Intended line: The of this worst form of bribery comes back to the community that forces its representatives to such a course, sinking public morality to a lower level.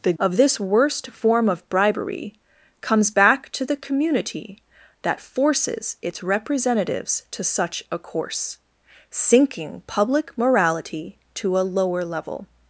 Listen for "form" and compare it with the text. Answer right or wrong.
right